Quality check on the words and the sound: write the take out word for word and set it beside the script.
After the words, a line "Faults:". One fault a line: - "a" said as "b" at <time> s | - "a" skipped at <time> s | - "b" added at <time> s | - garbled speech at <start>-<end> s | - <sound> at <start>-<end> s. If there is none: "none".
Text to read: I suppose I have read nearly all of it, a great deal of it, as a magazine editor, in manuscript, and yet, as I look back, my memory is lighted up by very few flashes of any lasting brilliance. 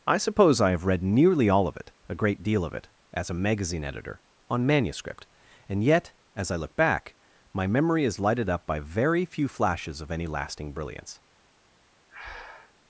I suppose I have read nearly all of it, a great deal of it, as a magazine editor, on manuscript, and yet, as I look back, my memory is lighted up by very few flashes of any lasting brilliance.
Faults:
- "in" said as "on" at 4.5 s
- breath at 12.1-12.7 s